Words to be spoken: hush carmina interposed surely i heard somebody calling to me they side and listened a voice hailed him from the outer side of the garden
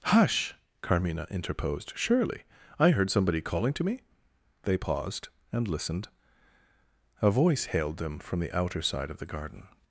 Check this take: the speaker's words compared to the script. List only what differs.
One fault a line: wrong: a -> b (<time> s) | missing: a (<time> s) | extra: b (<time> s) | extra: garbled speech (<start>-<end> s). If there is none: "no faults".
wrong: side -> paused (4.8 s)
wrong: him -> them (8.0 s)